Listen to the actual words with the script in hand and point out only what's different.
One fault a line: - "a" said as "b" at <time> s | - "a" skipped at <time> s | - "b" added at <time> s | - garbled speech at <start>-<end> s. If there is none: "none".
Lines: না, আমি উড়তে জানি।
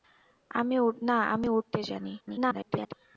- garbled speech at 2.2-2.9 s